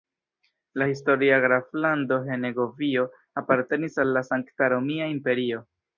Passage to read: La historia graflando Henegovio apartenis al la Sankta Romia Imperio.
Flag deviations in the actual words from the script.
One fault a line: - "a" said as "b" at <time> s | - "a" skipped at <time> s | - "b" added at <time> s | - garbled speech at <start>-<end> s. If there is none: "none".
none